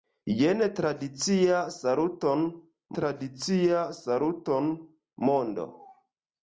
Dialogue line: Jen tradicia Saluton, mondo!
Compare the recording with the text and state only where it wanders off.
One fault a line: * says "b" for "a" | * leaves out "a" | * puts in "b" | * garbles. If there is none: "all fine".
* puts in "tradicia Saluton"